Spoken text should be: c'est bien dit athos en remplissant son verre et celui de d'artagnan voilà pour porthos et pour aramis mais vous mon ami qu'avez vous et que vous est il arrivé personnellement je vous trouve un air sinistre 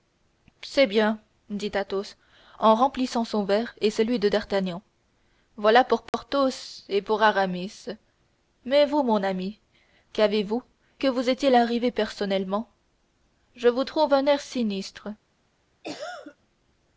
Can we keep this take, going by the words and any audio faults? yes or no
no